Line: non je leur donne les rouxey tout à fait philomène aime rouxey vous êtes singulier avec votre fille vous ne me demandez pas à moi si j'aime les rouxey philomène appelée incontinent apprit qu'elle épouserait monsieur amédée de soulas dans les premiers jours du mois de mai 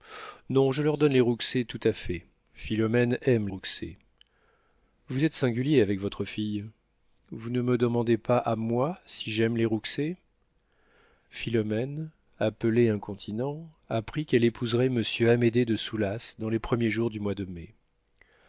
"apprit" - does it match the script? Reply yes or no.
yes